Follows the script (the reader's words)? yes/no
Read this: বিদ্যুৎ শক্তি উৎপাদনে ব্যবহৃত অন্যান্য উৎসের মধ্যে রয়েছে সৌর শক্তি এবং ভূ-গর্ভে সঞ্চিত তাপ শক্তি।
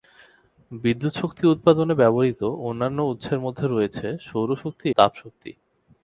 no